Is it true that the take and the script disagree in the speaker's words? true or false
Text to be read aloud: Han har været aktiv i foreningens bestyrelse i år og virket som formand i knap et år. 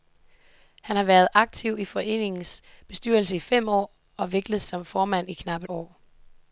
true